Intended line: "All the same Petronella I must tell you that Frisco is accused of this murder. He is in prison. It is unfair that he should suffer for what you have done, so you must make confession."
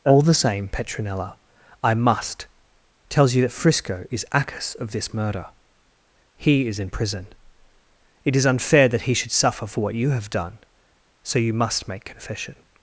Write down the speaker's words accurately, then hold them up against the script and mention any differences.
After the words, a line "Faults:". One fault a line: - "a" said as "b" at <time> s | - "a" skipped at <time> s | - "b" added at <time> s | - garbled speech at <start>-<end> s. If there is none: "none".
"All the same Petronella I must tells you that Frisco is accus of this murder. He is in prison. It is unfair that he should suffer for what you have done, so you must make confession."
Faults:
- "tell" said as "tells" at 3.1 s
- "accused" said as "accus" at 4.3 s